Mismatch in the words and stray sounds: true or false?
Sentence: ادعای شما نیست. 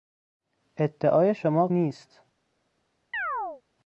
true